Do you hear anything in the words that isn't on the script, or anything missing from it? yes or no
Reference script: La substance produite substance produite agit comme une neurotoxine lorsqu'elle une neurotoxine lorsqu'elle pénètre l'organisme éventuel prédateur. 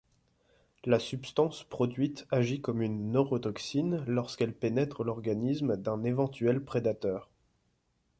yes